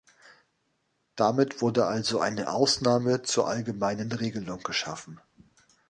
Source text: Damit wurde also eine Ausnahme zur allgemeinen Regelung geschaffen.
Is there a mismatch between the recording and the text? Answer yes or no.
no